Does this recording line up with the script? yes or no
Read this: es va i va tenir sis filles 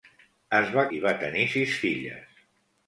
yes